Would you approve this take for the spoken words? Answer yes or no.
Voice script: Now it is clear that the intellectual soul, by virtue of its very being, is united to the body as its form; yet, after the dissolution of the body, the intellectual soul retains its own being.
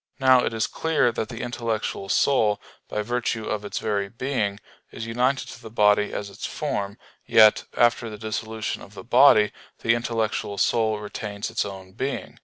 yes